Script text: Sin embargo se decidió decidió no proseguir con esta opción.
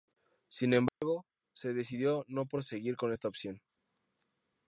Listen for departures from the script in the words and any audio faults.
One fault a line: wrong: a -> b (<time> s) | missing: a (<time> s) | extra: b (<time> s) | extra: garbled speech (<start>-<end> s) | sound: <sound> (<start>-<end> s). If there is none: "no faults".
sound: dropout (0.9-1.0 s)
missing: decidió (2.3 s)